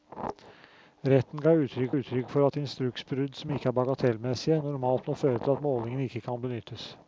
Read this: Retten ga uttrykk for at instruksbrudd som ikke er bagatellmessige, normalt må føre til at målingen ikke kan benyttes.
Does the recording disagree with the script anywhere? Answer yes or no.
yes